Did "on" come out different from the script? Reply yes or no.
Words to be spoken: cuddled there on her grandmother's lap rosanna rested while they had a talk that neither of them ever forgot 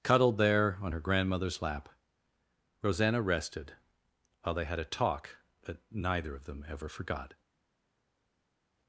no